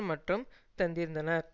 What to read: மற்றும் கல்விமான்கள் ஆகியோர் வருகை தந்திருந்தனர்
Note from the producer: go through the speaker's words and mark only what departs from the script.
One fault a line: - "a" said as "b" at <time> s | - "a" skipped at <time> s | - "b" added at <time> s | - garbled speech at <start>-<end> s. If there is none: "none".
- "கல்விமான்கள் ஆகியோர் வருகை" skipped at 0.4 s